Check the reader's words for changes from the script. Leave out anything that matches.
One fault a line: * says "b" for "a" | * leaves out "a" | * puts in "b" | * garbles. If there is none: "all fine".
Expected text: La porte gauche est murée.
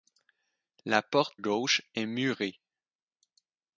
all fine